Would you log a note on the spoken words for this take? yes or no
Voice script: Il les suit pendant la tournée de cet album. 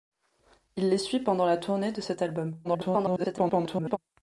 yes